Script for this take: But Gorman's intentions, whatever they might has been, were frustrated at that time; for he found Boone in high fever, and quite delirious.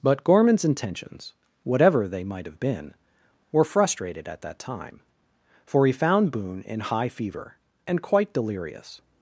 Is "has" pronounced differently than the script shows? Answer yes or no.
yes